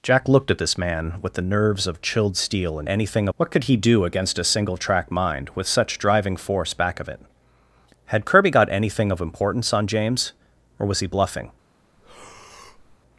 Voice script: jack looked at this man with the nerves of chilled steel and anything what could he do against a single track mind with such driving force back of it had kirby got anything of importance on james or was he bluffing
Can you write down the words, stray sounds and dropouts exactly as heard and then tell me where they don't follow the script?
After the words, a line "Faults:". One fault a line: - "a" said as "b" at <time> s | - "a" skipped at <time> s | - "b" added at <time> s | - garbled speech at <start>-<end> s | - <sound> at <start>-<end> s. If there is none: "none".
jack looked at this man with the nerves of chilled steel and anything what could he do against a single track mind with such driving force back of it had kirby got anything of importance on james or was he bluffing
Faults:
- breath at 12.0-13.0 s